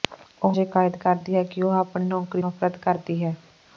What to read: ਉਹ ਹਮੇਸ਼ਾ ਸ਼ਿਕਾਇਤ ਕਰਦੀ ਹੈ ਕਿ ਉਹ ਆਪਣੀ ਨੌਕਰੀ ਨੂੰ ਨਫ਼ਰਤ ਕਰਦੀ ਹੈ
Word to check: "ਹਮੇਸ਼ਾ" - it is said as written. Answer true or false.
false